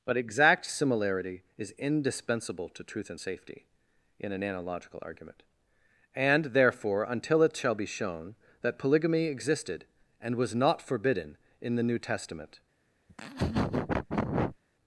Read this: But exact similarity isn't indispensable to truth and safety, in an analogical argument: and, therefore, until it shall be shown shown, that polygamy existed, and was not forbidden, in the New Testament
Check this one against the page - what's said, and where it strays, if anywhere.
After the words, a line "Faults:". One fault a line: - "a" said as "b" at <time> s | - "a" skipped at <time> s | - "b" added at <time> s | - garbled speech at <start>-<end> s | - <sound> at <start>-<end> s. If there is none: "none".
But exact similarity is indispensable to truth and safety, in an analogical argument: and, therefore, until it shall be shown, that polygamy existed, and was not forbidden, in the New Testament
Faults:
- "isn't" said as "is" at 1.6 s
- "shown" skipped at 8.4 s
- laugh at 13.1-14.6 s